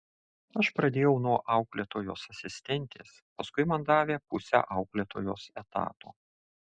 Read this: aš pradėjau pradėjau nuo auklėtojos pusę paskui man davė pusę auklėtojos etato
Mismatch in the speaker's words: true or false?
true